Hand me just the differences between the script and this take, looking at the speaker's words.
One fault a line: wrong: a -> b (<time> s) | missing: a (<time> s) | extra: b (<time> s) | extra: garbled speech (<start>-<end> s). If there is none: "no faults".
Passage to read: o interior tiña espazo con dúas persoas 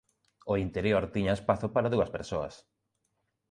wrong: con -> para (1.8 s)